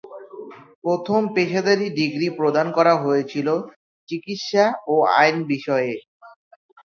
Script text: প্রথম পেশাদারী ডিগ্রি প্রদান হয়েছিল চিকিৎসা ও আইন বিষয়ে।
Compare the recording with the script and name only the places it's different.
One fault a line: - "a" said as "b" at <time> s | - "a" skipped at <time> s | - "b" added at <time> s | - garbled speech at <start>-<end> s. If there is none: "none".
- "করা" added at 2.8 s